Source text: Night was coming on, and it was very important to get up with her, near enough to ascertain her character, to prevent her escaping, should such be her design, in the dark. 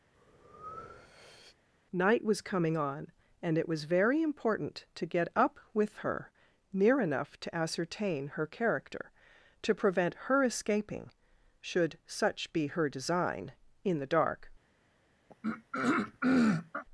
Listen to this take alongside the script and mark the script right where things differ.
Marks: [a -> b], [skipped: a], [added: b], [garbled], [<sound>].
[breath] Night was coming on, and it was very important to get up with her, near enough to ascertain her character, to prevent her escaping, should such be her design, in the dark. [throat clearing]